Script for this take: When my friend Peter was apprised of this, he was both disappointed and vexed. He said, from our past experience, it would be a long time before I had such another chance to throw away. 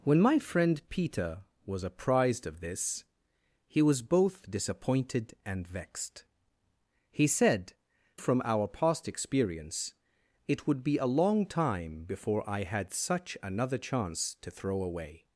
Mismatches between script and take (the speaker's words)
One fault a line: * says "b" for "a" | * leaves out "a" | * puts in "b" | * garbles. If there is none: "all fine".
all fine